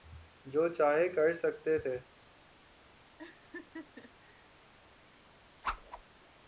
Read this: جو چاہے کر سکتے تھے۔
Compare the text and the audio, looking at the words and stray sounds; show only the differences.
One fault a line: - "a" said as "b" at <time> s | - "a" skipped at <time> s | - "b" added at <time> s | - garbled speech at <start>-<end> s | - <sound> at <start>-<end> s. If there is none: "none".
- laugh at 3.2-4.5 s
- whoosh at 5.6-6.0 s